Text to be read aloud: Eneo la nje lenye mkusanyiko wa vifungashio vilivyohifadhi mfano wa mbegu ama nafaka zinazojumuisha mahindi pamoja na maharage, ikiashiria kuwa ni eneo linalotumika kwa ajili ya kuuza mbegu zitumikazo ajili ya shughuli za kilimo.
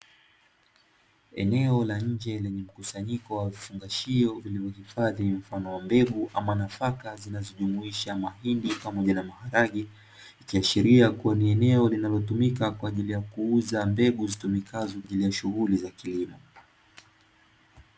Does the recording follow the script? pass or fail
pass